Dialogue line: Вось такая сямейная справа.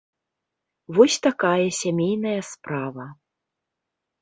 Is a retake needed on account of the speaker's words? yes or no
no